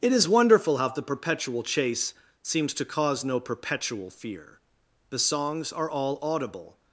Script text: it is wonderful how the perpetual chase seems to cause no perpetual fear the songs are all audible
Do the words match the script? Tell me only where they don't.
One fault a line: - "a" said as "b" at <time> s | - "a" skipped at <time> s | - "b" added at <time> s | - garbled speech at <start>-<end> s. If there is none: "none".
none